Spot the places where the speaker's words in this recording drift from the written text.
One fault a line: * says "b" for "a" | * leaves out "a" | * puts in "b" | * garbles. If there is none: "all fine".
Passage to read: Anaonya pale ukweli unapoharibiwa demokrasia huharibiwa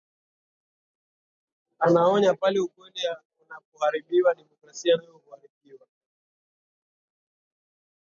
* puts in "nayo"